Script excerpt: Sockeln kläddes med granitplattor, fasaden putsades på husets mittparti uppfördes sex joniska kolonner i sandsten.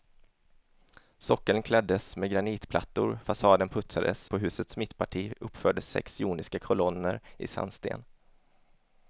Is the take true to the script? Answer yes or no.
yes